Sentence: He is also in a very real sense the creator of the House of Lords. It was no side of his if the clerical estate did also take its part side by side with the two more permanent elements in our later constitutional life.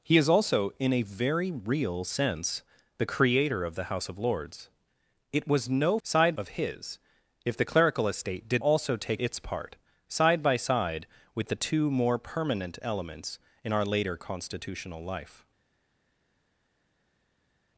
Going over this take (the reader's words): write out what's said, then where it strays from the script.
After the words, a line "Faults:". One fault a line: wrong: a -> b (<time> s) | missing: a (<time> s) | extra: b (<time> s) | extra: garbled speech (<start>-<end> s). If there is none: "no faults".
He is also in a very real sense the creator of the House of Lords. It was no side of his if the clerical estate did also take its part side by side with the two more permanent elements in our later constitutional life.
Faults:
no faults